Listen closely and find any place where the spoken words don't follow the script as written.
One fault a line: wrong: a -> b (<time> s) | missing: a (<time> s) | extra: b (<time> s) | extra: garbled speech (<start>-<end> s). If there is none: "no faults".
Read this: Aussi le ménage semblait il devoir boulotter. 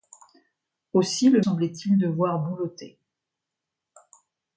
missing: ménage (1.4 s)